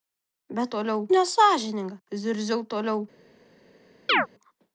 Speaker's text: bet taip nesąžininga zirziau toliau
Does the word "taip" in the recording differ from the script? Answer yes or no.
yes